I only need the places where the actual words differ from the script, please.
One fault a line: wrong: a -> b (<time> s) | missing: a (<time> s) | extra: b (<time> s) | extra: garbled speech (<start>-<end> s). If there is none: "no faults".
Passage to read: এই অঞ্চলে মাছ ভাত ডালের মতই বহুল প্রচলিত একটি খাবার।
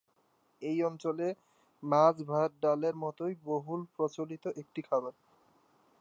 no faults